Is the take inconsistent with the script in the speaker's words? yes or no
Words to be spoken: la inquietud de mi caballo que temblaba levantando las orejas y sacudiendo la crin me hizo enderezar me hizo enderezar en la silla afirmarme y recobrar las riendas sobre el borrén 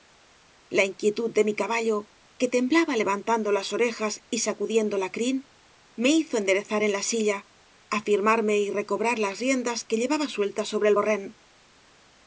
yes